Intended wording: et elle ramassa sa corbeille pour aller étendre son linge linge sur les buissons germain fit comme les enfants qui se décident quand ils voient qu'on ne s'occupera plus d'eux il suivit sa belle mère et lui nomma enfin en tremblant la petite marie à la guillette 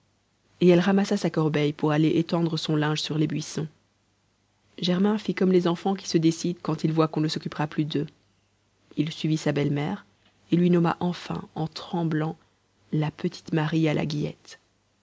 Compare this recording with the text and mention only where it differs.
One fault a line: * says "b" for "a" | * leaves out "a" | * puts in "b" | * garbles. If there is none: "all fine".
* leaves out "linge"